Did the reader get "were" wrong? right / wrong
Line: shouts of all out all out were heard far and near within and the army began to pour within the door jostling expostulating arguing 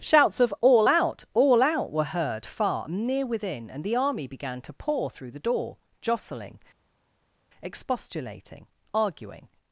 right